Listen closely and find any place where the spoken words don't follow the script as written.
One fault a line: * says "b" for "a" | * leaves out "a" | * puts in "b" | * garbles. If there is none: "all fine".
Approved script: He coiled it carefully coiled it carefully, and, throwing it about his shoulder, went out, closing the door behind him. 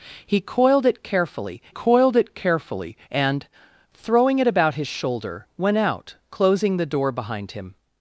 all fine